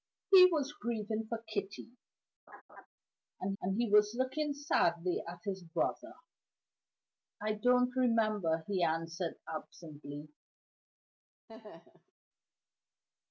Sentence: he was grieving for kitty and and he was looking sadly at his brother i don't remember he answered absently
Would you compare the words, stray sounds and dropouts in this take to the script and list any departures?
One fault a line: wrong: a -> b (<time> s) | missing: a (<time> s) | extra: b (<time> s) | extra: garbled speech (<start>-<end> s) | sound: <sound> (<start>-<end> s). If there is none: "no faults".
sound: laugh (2.5-2.9 s)
sound: laugh (11.5-12.1 s)